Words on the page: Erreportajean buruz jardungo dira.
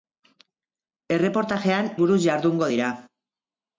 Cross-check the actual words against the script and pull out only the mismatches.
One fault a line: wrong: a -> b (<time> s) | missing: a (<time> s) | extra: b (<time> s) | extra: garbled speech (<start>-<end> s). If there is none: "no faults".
no faults